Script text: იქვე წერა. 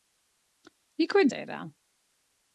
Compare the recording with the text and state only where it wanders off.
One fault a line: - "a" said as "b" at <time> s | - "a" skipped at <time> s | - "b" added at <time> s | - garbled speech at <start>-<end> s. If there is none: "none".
none